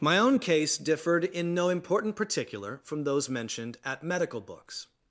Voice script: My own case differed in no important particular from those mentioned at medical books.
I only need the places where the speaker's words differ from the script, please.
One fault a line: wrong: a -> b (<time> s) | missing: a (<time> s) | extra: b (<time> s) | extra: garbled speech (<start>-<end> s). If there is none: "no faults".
no faults